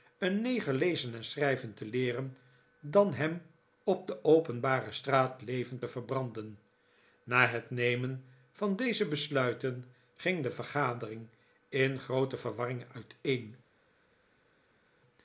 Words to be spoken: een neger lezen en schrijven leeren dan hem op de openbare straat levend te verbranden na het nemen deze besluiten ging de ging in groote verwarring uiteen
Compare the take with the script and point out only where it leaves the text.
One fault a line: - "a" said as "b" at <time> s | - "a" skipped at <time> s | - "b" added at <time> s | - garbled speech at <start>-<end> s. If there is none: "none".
- "te" added at 1.7 s
- "van" added at 8.5 s
- "ging" said as "vergadering" at 10.5 s